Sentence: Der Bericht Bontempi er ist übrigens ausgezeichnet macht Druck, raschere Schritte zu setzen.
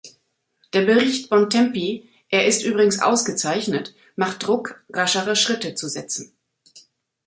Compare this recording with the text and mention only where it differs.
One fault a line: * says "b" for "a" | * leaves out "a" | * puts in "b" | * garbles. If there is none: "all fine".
all fine